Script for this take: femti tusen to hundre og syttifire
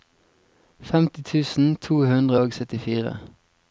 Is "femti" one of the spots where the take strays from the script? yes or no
no